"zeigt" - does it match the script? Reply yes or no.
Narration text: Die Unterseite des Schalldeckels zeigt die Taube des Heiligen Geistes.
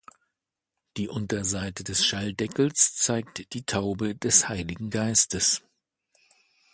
yes